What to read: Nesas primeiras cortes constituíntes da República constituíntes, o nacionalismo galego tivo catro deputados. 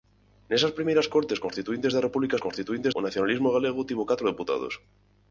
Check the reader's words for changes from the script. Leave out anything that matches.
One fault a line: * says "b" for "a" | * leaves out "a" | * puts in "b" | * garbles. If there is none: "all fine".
all fine